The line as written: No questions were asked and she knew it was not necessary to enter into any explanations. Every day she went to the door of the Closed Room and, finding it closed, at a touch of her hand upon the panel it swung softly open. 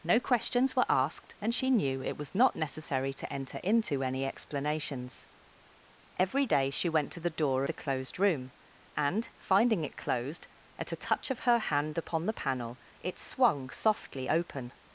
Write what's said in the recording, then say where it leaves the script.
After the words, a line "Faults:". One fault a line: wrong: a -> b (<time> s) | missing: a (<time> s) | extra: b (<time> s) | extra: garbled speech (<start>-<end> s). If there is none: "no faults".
No questions were asked and she knew it was not necessary to enter into any explanations. Every day she went to the door the Closed Room and, finding it closed, at a touch of her hand upon the panel it swung softly open.
Faults:
missing: of (7.6 s)